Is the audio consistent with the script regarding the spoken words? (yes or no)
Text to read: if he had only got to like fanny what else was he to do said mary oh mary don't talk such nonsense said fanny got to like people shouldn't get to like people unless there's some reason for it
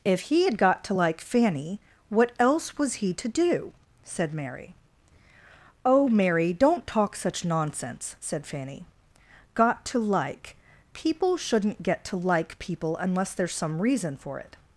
no